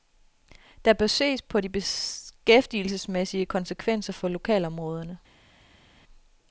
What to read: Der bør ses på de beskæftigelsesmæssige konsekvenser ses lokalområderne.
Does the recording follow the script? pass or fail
fail